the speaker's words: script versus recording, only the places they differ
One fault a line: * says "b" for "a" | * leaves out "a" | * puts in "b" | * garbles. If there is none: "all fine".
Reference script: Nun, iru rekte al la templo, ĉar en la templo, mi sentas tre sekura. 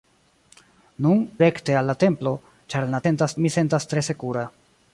* leaves out "iru"
* says "sentas" for "templo"